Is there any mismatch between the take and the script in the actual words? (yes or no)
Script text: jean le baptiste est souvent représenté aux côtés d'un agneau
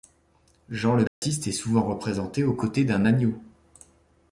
no